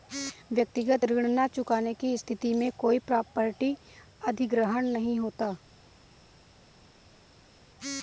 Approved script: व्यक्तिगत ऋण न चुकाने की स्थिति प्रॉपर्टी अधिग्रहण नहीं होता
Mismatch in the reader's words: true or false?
true